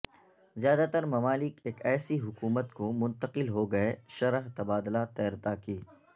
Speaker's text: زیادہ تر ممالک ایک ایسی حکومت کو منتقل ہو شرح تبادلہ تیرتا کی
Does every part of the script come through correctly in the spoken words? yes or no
no